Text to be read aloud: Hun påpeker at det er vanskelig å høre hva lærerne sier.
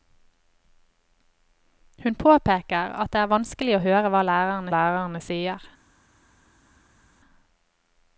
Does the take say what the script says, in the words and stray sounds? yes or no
no